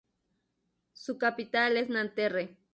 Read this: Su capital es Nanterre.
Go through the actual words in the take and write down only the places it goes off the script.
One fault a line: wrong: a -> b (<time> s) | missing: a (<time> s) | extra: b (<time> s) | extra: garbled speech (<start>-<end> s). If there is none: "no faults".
no faults